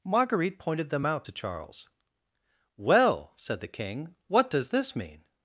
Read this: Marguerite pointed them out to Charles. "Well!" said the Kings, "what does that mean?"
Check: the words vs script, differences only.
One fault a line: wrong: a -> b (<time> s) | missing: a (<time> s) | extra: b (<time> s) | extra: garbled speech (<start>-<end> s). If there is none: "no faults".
wrong: Kings -> King (3.7 s)
wrong: that -> this (4.7 s)